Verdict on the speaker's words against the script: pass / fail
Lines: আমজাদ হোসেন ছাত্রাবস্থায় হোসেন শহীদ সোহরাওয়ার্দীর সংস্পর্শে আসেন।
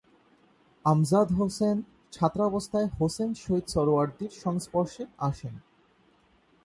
pass